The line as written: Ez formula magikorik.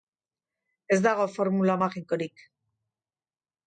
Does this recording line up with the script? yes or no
no